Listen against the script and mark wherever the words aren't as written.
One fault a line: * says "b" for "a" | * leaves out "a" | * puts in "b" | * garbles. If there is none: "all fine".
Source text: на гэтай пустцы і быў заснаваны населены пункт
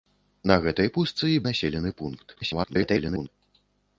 * leaves out "быў заснаваны"
* garbles